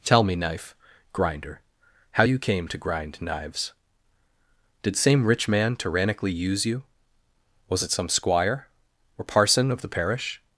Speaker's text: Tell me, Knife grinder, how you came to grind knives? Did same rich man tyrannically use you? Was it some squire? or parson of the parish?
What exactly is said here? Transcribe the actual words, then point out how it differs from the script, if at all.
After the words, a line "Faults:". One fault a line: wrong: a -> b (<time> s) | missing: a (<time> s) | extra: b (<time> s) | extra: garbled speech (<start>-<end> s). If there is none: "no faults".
Tell me, Knife grinder, how you came to grind knives? Did same rich man tyrannically use you? Was it some squire? or parson of the parish?
Faults:
no faults